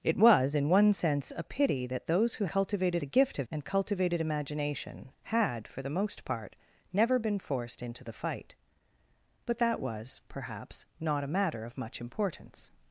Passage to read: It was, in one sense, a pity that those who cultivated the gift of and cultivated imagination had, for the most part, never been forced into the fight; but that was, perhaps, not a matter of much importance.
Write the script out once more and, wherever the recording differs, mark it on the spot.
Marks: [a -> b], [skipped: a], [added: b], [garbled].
It was, in one sense, a pity that those who cultivated the gift of and cultivated imagination had, for the most part, never been forced into the fight; but that was, perhaps, not a matter of much importance.